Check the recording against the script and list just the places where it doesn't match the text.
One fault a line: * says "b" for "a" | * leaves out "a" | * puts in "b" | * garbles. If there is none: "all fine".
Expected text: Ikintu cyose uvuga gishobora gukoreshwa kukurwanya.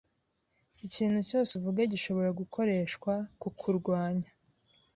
all fine